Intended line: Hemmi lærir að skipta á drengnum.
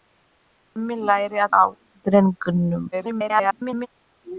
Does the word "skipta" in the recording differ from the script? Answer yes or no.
yes